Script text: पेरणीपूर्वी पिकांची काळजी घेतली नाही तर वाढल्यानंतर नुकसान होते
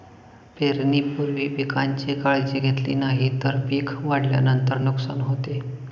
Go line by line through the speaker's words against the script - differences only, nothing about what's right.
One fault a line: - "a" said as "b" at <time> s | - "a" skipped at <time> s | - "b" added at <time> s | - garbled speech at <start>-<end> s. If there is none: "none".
- "पिक" added at 3.7 s